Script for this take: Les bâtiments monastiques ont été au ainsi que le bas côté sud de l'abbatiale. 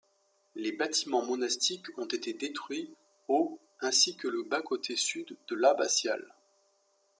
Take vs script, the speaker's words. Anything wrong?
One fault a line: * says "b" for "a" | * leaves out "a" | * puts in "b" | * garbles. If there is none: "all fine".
* puts in "détruits"